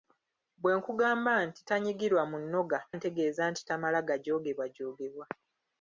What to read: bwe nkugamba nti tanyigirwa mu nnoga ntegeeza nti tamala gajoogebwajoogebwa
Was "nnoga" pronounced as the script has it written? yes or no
yes